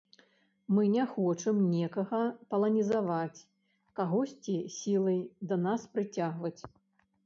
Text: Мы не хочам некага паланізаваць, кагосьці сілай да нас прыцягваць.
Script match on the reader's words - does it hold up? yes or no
yes